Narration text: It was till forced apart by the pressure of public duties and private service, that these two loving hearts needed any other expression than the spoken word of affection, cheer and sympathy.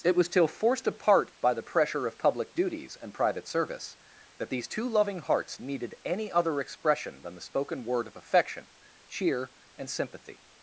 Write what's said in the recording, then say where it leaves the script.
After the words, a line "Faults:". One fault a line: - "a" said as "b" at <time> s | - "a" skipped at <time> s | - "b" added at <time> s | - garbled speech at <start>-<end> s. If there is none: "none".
It was till forced apart by the pressure of public duties and private service, that these two loving hearts needed any other expression than the spoken word of affection, cheer and sympathy.
Faults:
none